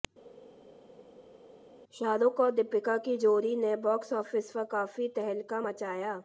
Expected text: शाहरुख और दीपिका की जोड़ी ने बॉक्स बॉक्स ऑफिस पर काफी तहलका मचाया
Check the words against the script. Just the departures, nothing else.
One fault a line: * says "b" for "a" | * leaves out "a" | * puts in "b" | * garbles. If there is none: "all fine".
* leaves out "बॉक्स"